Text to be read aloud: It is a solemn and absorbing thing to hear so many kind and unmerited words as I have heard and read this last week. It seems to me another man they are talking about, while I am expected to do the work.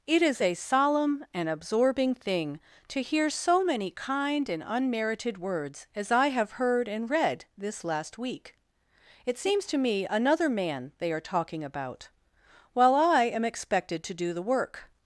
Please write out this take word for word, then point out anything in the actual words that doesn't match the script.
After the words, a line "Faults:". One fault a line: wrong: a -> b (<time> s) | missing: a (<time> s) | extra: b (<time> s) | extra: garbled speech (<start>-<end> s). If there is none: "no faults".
It is a solemn and absorbing thing to hear so many kind and unmerited words as I have heard and read this last week. It seems to me another man they are talking about, while I am expected to do the work.
Faults:
no faults